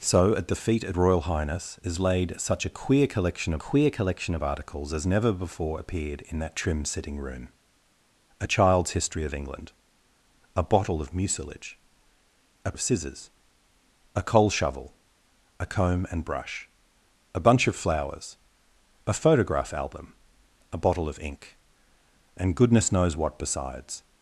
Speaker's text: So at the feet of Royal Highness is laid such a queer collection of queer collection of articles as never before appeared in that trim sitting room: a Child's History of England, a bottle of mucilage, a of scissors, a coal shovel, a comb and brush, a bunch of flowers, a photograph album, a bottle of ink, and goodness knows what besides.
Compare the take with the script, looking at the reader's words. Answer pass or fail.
pass